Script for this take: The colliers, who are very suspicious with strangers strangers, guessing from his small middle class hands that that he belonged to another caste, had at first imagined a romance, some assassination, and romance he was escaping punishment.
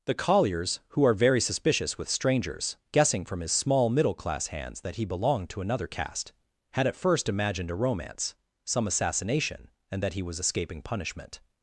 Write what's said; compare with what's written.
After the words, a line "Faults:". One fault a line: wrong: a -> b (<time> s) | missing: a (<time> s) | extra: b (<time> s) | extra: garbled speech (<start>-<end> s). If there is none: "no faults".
The colliers, who are very suspicious with strangers, guessing from his small middle class hands that he belonged to another caste, had at first imagined a romance, some assassination, and that he was escaping punishment.
Faults:
missing: strangers (2.8 s)
missing: that (5.0 s)
wrong: romance -> that (10.0 s)